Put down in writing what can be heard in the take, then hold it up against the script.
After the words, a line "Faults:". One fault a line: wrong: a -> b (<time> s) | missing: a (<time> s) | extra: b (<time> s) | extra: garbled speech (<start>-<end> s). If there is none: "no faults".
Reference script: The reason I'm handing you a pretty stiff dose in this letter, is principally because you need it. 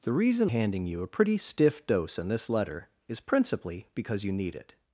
The reason Handing you a pretty stiff dose in this letter, is principally because you need it.
Faults:
missing: I'm (0.5 s)